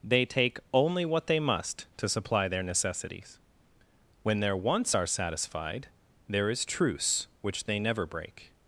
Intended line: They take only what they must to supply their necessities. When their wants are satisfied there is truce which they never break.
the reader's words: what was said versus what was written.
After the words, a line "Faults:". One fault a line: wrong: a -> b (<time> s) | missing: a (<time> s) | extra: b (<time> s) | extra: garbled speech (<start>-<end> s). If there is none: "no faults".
They take only what they must to supply their necessities. When their wants are satisfied there is truce which they never break.
Faults:
no faults